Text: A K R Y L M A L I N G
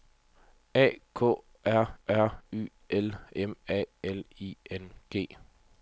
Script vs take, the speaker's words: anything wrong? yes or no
yes